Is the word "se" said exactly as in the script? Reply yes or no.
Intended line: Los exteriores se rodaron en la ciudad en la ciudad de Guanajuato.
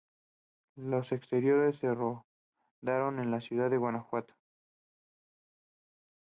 yes